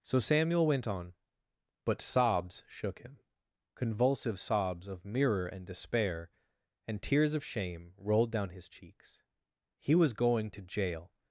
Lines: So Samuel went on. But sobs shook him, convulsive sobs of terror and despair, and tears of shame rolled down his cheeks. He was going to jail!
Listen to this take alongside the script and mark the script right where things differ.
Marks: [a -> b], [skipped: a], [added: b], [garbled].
So Samuel went on. But sobs shook him, convulsive sobs of [terror -> mirror] and despair, and tears of shame rolled down his cheeks. He was going to jail!